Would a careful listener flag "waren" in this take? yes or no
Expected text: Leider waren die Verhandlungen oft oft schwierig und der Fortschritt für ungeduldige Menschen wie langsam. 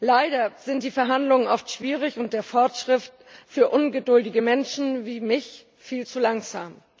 yes